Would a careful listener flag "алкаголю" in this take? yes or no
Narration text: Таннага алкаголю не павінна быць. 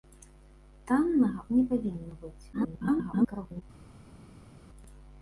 yes